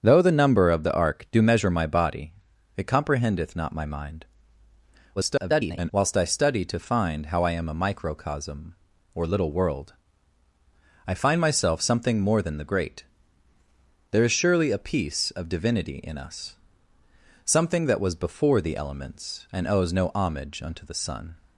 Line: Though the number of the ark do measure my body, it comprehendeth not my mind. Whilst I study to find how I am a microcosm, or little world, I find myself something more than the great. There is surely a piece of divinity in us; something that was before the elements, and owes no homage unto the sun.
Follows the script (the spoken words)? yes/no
no